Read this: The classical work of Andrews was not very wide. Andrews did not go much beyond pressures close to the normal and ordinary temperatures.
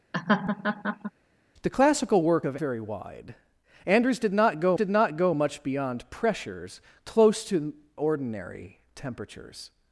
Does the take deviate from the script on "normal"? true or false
true